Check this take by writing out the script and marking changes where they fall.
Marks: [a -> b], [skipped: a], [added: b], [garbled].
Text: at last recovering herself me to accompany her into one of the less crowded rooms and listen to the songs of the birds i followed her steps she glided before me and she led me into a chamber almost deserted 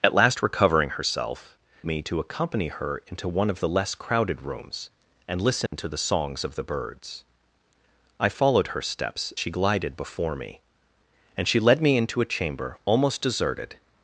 at last recovering herself me to accompany her into one of the less crowded rooms and listen to the songs of the birds i followed her steps she glided before me and she led me into a chamber almost deserted